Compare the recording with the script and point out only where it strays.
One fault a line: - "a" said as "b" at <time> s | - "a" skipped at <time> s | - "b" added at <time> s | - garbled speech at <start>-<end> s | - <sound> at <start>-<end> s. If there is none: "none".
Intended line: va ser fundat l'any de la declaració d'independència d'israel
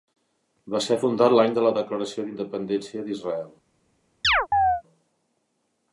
- chirp at 4.2-4.8 s